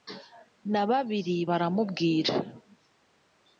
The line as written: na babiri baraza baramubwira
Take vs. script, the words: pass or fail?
fail